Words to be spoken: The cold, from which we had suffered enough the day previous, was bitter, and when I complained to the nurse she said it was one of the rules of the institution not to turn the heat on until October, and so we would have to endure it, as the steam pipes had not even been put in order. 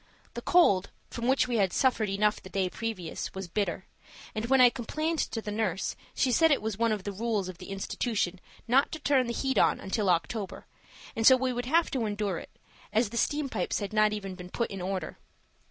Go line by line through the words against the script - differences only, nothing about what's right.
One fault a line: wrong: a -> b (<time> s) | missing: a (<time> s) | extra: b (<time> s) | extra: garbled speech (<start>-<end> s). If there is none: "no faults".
no faults